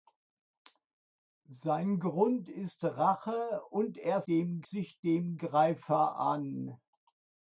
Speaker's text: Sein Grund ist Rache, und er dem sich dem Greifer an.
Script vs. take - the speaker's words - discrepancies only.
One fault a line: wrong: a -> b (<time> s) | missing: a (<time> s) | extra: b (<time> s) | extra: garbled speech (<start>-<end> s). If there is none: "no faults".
no faults